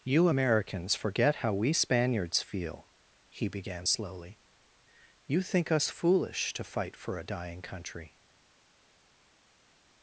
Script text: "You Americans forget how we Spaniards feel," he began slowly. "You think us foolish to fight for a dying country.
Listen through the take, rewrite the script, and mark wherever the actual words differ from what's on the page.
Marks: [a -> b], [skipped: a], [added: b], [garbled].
"You Americans forget how we Spaniards feel," he began slowly. "You think us foolish to fight for a dying country.